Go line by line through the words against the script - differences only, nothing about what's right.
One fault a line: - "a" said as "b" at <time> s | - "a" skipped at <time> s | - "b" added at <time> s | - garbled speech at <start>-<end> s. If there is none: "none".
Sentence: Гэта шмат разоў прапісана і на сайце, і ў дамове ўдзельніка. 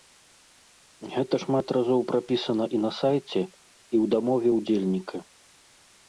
none